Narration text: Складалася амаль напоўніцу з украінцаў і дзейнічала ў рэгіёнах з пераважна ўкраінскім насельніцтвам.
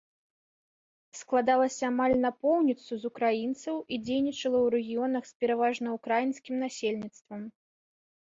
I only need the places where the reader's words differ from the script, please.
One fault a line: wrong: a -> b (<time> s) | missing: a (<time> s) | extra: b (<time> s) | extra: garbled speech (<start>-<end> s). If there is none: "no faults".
no faults